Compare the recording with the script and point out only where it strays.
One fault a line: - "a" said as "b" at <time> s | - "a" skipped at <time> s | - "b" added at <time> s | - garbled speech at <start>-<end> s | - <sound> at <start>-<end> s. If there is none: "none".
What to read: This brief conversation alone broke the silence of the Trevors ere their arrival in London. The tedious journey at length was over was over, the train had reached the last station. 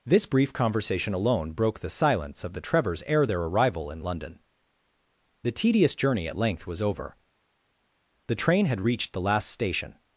- "was over" skipped at 7.2 s